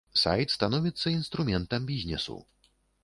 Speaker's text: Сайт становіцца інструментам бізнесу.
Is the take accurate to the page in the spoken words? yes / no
yes